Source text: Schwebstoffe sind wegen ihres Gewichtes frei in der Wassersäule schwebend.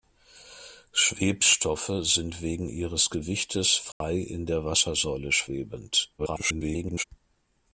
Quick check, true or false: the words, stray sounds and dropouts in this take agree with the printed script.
false